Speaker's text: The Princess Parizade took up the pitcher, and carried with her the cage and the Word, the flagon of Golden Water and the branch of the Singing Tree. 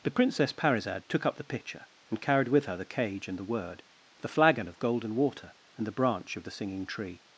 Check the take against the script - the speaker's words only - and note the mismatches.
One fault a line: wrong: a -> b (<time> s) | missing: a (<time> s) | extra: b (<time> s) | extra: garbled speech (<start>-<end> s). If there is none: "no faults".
no faults